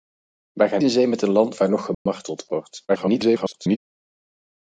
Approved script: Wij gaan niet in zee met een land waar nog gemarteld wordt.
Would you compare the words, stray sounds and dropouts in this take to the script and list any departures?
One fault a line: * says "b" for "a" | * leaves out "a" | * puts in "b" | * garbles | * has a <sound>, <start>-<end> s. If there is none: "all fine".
* leaves out "niet"
* has a dropout, 1.9-2.1 s
* garbles